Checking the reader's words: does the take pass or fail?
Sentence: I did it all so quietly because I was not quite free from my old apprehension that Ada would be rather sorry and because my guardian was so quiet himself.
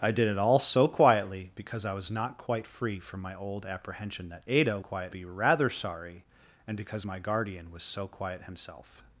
fail